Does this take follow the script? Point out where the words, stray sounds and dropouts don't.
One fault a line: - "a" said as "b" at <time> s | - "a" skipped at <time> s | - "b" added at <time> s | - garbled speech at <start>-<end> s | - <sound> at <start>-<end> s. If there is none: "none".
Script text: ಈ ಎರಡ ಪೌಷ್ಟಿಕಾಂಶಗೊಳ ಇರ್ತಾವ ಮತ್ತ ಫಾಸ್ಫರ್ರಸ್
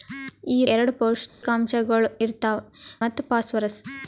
- dropout at 1.3-1.4 s